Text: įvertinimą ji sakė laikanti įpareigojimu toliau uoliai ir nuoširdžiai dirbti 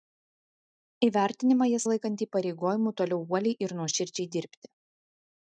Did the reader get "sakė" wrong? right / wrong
wrong